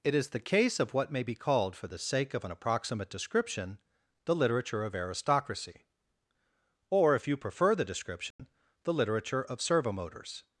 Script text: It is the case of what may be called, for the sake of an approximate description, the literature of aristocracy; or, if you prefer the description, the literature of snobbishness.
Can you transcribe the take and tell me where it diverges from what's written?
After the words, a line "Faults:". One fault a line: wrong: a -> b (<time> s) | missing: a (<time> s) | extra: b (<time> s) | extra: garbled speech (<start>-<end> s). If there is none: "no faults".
It is the case of what may be called, for the sake of an approximate description, the literature of aristocracy; or, if you prefer the description, the literature of servomotors.
Faults:
wrong: snobbishness -> servomotors (9.6 s)